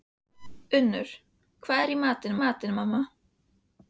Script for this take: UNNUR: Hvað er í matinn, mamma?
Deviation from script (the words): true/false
true